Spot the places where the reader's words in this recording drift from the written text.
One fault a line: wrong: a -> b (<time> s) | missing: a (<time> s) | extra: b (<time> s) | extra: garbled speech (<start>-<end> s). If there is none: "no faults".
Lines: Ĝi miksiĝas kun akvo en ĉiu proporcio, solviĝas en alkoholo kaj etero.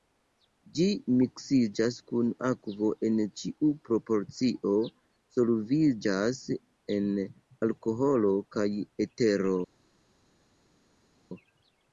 no faults